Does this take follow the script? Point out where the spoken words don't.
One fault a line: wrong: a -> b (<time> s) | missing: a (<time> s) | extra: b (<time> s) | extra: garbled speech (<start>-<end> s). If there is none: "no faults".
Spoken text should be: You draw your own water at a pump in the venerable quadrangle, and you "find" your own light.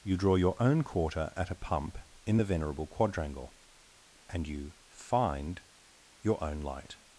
wrong: water -> quarter (0.8 s)